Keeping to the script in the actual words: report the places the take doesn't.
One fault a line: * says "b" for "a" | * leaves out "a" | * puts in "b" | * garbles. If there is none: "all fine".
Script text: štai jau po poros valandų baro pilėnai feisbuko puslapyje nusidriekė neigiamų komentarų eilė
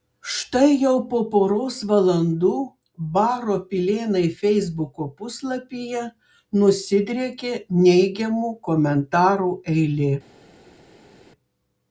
all fine